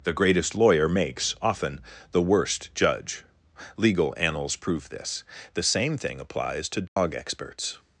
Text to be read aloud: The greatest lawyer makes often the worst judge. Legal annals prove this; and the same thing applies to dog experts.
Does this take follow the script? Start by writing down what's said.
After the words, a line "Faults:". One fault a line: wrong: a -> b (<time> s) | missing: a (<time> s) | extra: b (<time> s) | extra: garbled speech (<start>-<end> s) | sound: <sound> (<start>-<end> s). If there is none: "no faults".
The greatest lawyer makes often the worst judge. Legal annals prove this; the same thing applies to dog experts.
Faults:
missing: and (5.2 s)
sound: dropout (6.9-7.0 s)